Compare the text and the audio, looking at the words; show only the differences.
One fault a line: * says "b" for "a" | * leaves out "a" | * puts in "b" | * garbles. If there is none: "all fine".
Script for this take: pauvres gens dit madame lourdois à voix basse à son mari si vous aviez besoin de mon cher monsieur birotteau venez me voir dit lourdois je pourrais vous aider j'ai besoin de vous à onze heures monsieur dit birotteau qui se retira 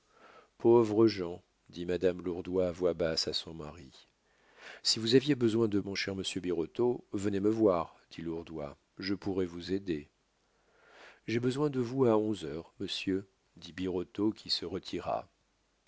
all fine